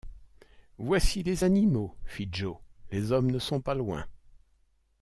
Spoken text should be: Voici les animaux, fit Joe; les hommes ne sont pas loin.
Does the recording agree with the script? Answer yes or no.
yes